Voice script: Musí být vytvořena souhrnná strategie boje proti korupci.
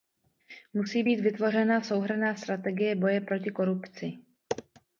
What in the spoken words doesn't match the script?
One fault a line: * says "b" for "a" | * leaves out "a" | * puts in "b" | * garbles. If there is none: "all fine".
all fine